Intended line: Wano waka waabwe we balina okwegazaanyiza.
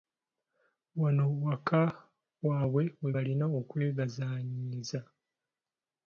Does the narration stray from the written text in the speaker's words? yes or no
no